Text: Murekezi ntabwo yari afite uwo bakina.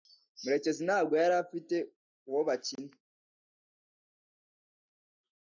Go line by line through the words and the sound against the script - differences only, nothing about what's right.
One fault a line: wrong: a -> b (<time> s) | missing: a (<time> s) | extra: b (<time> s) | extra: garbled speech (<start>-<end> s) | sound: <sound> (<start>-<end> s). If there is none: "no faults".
no faults